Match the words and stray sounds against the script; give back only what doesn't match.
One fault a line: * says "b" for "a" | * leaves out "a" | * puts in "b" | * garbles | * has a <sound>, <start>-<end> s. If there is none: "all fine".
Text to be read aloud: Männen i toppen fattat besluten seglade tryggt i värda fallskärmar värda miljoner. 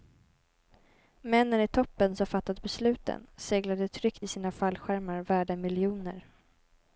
* puts in "som"
* says "sina" for "värda"